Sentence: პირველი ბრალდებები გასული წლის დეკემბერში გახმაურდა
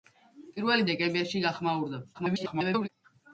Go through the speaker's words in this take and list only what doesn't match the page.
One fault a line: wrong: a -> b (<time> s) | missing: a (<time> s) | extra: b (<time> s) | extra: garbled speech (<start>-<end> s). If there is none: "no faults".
missing: ბრალდებები გასული წლის (0.9 s)
extra: garbled speech (2.1-2.9 s)